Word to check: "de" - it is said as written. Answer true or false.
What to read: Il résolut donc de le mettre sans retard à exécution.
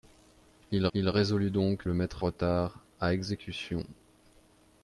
false